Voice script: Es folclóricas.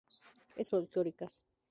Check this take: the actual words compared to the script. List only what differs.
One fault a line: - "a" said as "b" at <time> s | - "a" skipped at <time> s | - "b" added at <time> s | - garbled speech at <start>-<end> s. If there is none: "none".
none